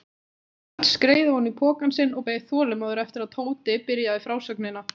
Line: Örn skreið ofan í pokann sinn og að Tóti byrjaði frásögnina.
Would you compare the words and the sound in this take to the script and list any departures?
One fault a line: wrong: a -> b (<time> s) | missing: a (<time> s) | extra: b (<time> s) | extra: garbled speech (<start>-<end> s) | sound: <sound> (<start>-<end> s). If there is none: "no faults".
extra: beið þolinmóður eftir (2.3 s)